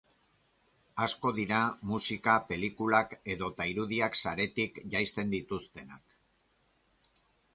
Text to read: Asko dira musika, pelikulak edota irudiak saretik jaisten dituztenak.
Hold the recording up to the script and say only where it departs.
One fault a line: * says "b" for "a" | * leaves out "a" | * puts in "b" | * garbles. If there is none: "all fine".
all fine